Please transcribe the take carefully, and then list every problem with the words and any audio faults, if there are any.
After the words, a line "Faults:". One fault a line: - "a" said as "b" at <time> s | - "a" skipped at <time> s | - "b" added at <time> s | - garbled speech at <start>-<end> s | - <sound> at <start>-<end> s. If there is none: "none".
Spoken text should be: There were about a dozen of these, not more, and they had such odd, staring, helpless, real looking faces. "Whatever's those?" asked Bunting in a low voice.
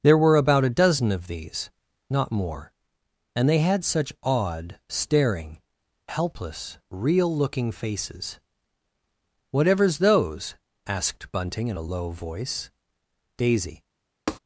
There were about a dozen of these, not more, and they had such odd, staring, helpless, real looking faces. "Whatever's those?" asked Bunting in a low voice. Daisy
Faults:
- "Daisy" added at 13.4 s
- tap at 14.3-14.4 s